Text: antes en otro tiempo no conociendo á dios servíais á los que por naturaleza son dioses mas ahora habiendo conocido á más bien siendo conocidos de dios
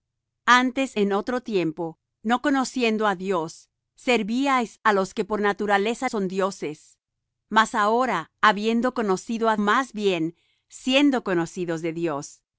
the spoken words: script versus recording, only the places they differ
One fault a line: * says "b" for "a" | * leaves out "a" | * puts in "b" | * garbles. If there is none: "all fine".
all fine